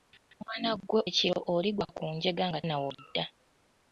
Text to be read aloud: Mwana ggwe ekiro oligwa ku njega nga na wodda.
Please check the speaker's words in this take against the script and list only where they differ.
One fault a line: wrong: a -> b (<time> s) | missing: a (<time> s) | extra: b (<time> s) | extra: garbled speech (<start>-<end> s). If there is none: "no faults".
no faults